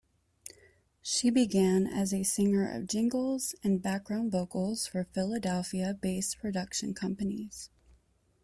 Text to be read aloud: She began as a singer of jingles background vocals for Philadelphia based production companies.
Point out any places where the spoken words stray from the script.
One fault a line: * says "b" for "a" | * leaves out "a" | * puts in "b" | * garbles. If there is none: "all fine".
* puts in "and"